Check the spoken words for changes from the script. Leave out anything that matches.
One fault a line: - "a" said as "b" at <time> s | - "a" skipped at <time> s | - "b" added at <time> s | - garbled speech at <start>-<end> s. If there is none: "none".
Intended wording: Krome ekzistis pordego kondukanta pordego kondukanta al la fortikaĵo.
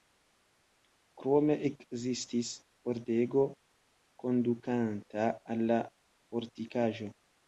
- "pordego kondukanta" skipped at 5.3 s